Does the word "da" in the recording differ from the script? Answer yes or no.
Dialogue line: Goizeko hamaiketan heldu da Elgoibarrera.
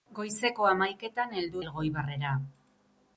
yes